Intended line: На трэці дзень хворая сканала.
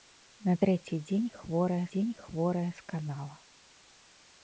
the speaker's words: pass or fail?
fail